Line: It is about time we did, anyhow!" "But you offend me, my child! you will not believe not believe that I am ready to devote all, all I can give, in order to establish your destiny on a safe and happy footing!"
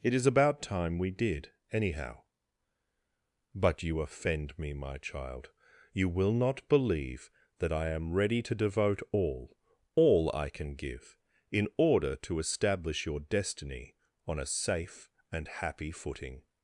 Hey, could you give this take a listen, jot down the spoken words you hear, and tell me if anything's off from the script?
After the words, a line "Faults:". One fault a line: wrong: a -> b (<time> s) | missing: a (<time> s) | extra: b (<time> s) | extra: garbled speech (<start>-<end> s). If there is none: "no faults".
It is about time we did, anyhow!" "But you offend me, my child! you will not believe that I am ready to devote all, all I can give, in order to establish your destiny on a safe and happy footing!"
Faults:
missing: not believe (7.3 s)